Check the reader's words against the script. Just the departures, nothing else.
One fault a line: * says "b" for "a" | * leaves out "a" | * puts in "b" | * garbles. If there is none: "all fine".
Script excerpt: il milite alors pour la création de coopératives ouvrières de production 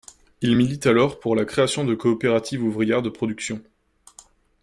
all fine